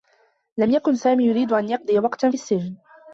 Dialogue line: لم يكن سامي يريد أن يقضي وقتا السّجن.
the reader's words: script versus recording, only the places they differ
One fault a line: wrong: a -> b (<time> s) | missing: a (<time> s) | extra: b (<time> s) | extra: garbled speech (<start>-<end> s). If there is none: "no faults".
no faults